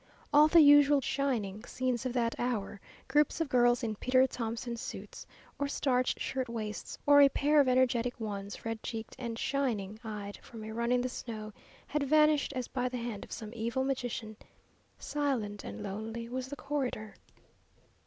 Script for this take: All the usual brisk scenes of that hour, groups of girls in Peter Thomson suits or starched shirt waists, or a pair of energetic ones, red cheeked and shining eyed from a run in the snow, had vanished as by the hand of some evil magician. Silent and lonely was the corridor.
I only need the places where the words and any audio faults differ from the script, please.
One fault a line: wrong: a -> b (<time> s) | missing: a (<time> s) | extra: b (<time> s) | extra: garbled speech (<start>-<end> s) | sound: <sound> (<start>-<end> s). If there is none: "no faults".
wrong: brisk -> shining (1.0 s)